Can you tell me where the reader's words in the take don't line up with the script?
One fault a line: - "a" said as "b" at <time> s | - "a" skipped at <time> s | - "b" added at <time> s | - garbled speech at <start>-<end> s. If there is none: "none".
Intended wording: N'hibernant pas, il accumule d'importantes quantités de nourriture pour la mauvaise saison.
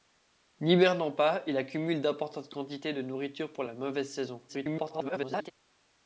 - garbled speech at 4.5-5.5 s